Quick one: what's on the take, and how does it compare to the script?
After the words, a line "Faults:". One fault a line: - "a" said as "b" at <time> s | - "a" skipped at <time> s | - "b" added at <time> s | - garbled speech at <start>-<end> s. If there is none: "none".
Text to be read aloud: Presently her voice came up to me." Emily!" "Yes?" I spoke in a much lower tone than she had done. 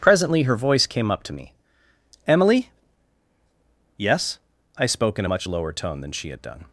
Presently her voice came up to me." Emily!" "Yes?" I spoke in a much lower tone than she had done.
Faults:
none